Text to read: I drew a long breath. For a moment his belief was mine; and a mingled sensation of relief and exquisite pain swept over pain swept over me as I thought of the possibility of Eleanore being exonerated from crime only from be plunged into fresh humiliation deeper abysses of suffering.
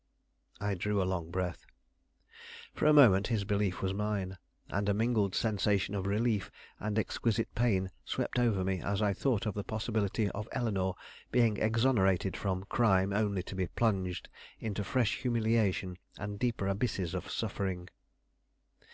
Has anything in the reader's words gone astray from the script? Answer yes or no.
yes